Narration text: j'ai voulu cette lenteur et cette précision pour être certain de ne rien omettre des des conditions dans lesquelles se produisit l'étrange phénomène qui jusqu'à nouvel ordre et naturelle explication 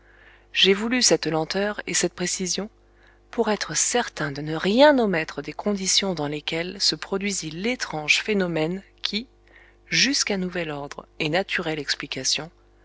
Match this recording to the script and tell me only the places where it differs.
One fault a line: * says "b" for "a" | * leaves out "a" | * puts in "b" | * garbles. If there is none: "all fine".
* leaves out "des"